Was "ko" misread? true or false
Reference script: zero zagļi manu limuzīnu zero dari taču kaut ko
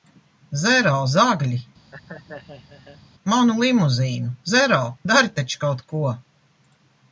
false